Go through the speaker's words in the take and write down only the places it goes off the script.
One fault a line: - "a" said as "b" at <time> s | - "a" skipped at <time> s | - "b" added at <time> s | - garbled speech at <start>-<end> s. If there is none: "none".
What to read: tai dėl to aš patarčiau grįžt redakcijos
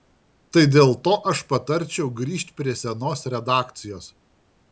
- "prie senos" added at 2.6 s